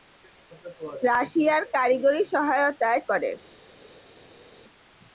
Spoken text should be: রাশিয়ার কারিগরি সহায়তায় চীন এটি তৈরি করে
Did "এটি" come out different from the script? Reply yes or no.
yes